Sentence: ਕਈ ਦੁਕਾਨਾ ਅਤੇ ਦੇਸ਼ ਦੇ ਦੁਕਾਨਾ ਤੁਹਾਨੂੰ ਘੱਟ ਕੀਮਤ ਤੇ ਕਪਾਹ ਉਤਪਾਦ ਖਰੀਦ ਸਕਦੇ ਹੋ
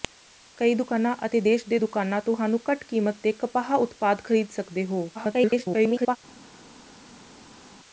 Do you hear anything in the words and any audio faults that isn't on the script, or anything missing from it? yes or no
yes